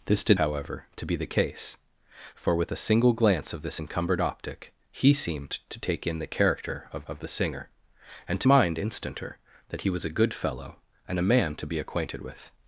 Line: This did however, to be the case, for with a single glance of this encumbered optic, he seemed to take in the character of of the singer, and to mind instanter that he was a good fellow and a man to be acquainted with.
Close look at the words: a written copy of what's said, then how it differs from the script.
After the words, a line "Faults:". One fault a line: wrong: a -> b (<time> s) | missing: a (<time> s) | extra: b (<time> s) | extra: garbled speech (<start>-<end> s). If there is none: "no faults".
This did however, to be the case, for with a single glance of this encumbered optic, he seemed to take in the character of of the singer, and to mind instanter that he was a good fellow and a man to be acquainted with.
Faults:
no faults